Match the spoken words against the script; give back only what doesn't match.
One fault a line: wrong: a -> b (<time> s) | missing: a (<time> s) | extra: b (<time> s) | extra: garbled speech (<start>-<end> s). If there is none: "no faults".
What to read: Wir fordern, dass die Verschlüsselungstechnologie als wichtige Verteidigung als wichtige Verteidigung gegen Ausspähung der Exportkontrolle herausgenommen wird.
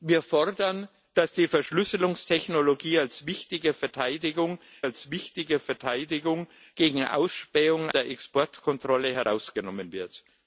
no faults